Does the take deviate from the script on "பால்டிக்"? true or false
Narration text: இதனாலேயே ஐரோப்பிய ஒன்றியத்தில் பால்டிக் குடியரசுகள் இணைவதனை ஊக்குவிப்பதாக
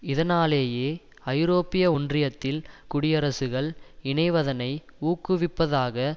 true